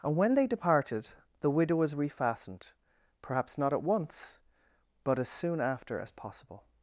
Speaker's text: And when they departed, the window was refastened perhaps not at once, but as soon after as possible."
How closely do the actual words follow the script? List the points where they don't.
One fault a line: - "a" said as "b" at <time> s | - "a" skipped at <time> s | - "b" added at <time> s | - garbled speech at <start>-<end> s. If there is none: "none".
- "window" said as "widow" at 1.5 s